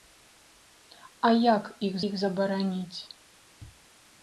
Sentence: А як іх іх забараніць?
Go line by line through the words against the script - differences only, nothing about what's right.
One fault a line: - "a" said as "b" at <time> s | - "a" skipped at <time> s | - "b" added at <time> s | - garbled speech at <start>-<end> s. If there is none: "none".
none